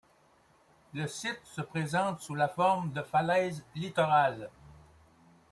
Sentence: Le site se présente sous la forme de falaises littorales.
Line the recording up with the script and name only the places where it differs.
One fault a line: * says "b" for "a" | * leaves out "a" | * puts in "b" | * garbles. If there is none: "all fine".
all fine